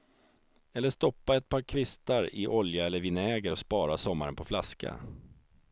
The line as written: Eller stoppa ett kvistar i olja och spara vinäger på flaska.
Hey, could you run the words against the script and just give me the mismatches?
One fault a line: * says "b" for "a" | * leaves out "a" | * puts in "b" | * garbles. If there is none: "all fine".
* puts in "par"
* puts in "eller vinäger"
* says "sommaren" for "vinäger"